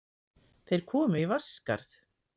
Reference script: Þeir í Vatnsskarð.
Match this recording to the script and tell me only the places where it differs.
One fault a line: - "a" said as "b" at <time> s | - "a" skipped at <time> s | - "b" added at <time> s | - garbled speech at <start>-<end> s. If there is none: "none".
- "komu" added at 0.9 s